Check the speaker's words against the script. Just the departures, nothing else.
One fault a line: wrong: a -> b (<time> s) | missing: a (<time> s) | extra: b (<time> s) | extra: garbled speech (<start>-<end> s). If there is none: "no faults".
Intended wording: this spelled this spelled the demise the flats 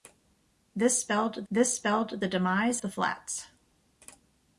no faults